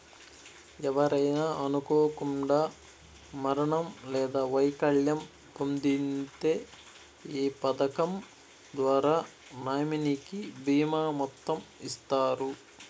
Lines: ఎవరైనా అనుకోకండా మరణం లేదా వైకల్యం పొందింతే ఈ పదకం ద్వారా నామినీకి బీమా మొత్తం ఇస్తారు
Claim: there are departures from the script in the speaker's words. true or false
false